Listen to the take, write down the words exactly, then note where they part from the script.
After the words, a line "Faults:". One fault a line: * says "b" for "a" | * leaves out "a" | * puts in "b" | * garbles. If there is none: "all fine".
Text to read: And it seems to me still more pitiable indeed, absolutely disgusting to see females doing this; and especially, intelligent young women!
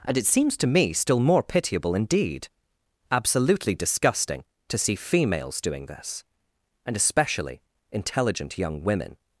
And it seems to me still more pitiable indeed, absolutely disgusting to see females doing this; and especially, intelligent young women!
Faults:
all fine